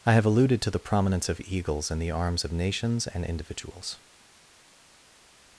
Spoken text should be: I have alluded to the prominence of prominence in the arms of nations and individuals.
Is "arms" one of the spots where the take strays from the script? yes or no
no